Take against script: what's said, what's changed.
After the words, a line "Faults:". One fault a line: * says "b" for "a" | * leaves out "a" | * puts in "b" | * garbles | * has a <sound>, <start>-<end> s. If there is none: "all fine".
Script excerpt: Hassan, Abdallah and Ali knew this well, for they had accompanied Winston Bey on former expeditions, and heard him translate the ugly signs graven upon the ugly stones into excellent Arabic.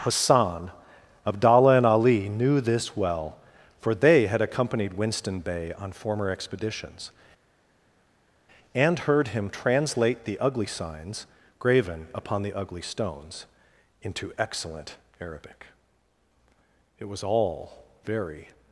Hassan, Abdallah and Ali knew this well, for they had accompanied Winston Bey on former expeditions, and heard him translate the ugly signs graven upon the ugly stones into excellent Arabic. It was all very
Faults:
* puts in "It was all very"